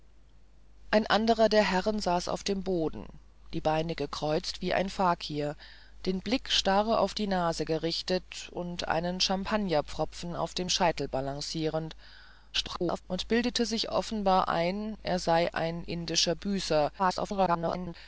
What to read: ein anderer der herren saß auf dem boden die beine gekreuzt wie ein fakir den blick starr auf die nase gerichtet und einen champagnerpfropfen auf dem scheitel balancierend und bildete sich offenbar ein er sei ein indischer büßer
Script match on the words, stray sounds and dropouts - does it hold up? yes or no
no